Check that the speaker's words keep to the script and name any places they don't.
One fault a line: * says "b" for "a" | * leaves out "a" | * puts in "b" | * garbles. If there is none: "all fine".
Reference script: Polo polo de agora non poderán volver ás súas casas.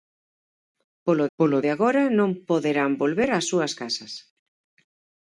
all fine